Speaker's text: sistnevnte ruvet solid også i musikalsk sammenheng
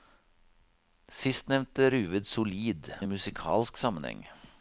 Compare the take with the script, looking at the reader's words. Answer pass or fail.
fail